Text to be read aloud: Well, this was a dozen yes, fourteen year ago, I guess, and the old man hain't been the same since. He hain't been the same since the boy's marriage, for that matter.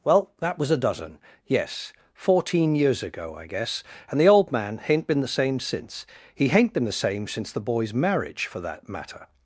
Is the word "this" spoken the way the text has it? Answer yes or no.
no